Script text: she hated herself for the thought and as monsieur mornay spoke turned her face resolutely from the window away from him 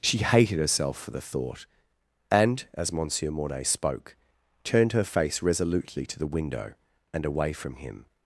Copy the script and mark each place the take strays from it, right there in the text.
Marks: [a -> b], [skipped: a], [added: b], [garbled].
she hated herself for the thought and as monsieur mornay spoke turned her face resolutely [from -> to] the window [added: and] away from him